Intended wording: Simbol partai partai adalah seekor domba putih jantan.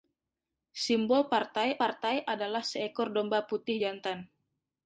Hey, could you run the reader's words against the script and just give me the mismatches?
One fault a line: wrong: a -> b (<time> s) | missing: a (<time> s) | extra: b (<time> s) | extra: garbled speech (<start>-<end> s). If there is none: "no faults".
no faults